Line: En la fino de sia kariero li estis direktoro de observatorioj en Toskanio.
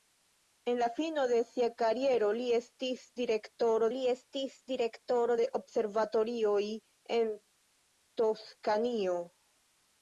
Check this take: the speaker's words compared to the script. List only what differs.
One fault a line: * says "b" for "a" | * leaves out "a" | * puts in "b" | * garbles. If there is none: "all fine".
* puts in "li estis direktoro"